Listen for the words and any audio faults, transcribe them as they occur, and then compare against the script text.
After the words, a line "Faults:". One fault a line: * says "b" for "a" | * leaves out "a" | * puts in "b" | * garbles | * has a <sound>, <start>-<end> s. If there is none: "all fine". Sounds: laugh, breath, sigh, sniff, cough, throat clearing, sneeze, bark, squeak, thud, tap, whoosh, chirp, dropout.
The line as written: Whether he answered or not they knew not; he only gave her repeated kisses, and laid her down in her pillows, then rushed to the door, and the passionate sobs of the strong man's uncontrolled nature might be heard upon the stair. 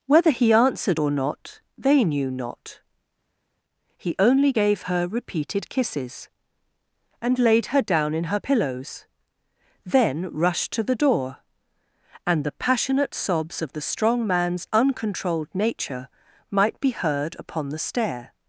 Whether he answered or not they knew not; he only gave her repeated kisses, and laid her down in her pillows, then rushed to the door, and the passionate sobs of the strong man's uncontrolled nature might be heard upon the stair.
Faults:
all fine